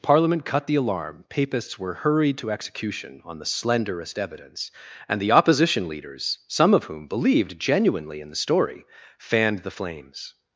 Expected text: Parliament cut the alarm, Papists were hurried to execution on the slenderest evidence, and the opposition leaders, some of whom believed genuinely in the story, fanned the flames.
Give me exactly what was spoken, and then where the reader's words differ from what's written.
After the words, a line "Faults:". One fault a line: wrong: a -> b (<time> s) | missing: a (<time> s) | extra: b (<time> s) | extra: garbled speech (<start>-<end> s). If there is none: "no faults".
Parliament cut the alarm, Papists were hurried to execution on the slenderest evidence, and the opposition leaders, some of whom believed genuinely in the story, fanned the flames.
Faults:
no faults